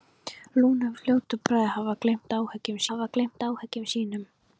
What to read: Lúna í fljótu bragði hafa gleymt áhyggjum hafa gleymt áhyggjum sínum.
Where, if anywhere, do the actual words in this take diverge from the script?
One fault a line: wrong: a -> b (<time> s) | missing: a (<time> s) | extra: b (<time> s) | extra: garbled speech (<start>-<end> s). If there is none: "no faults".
no faults